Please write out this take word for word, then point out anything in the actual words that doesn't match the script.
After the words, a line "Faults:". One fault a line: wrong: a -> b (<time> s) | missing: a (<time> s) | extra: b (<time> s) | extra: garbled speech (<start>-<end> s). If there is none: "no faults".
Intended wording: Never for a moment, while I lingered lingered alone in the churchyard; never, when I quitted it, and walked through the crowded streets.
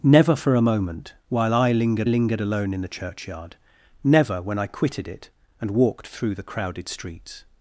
Never for a moment, while I lingered lingered alone in the churchyard; never, when I quitted it, and walked through the crowded streets.
Faults:
no faults